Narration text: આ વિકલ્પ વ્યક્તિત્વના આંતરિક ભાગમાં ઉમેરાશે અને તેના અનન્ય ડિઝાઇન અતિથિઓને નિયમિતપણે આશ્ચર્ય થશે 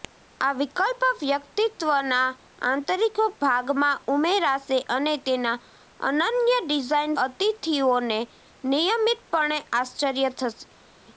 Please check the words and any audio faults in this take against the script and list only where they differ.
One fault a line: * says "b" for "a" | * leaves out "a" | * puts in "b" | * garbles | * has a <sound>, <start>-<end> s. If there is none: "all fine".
all fine